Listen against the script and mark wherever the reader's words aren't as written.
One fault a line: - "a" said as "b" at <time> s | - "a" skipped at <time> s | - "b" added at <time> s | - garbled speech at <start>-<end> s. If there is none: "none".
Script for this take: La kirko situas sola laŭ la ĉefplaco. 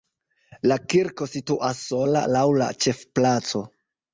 none